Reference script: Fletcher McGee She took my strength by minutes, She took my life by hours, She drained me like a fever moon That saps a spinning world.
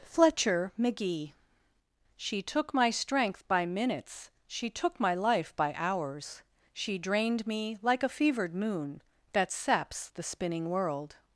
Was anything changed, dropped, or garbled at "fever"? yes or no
yes